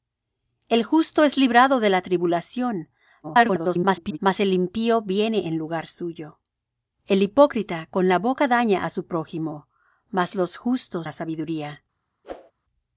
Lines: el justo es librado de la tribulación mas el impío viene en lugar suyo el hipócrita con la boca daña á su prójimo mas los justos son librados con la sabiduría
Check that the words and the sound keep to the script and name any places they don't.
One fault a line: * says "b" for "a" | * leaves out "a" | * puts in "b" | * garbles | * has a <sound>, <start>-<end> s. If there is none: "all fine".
* garbles
* leaves out "son librados con"
* has a whoosh, 12.2-12.5 s